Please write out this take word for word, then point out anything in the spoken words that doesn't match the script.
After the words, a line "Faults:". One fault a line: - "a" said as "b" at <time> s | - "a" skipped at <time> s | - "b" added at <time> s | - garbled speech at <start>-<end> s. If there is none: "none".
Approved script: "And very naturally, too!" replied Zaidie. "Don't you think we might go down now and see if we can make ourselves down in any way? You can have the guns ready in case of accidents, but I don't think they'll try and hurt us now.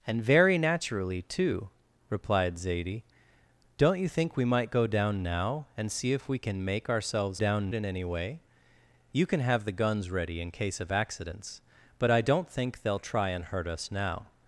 "And very naturally, too!" replied Zaidie. "Don't you think we might go down now and see if we can make ourselves down in any way? You can have the guns ready in case of accidents, but I don't think they'll try and hurt us now.
Faults:
none